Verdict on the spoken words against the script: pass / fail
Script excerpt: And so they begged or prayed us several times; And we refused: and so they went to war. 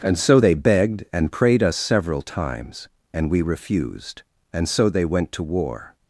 fail